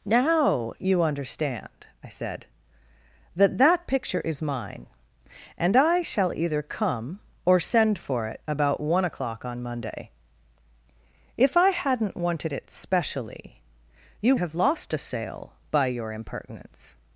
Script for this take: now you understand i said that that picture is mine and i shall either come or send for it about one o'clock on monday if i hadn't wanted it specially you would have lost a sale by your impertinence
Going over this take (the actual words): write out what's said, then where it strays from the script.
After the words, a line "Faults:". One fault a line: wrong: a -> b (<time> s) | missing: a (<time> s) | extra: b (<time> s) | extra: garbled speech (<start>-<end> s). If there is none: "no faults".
now you understand i said that that picture is mine and i shall either come or send for it about one o'clock on monday if i hadn't wanted it specially you have lost a sale by your impertinence
Faults:
missing: would (14.4 s)